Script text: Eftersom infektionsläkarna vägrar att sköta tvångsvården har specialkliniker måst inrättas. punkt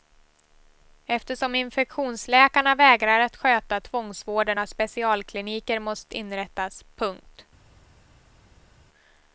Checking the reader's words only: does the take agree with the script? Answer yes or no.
yes